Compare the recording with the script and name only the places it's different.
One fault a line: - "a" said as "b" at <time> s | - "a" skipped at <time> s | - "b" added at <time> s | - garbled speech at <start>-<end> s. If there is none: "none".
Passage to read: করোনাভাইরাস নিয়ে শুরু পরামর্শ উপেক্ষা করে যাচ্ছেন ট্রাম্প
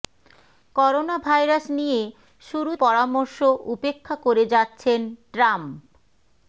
none